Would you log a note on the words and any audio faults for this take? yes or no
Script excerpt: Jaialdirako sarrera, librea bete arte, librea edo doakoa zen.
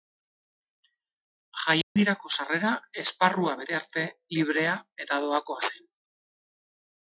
yes